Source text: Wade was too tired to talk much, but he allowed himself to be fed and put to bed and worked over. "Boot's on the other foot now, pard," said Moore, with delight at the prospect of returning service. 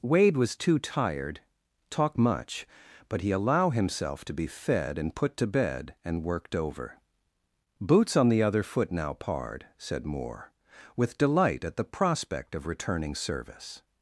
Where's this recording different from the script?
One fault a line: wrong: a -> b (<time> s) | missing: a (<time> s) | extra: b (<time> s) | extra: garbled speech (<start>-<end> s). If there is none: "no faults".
missing: to (1.4 s)
wrong: allowed -> allow (3.3 s)